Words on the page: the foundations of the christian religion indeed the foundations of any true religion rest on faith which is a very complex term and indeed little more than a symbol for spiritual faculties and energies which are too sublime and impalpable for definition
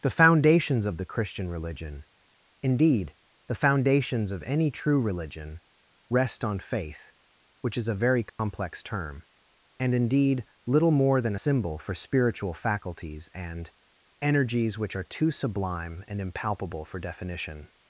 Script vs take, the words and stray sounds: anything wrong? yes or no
yes